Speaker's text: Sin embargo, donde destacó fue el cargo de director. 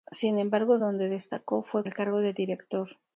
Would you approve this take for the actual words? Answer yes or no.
yes